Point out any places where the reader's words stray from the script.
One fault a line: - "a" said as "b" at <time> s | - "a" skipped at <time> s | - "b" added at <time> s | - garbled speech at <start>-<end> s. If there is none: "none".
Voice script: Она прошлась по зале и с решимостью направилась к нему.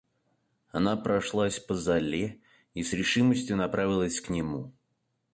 none